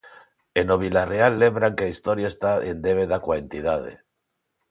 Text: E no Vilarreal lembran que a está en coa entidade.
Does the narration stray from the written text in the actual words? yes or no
yes